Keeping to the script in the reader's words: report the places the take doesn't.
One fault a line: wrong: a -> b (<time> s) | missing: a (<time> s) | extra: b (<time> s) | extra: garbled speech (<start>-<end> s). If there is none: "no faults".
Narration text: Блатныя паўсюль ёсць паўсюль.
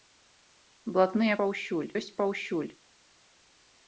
no faults